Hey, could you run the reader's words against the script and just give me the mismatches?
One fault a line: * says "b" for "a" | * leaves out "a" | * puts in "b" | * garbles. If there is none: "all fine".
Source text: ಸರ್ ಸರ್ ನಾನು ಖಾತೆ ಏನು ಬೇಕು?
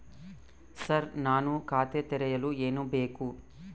* leaves out "ಸರ್"
* puts in "ತೆರೆಯಲು"